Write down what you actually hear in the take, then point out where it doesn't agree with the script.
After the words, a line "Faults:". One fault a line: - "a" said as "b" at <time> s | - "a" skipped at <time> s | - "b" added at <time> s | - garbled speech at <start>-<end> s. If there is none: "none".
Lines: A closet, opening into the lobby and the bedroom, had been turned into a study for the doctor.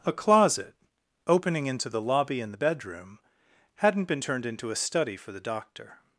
A closet, opening into the lobby and the bedroom, hadn't been turned into a study for the doctor.
Faults:
- "had" said as "hadn't" at 3.8 s